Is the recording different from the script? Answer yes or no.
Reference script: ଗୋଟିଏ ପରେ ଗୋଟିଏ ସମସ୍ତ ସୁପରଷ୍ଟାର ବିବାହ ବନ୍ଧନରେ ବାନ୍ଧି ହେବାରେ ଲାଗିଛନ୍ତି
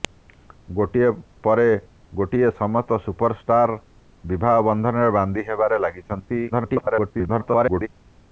yes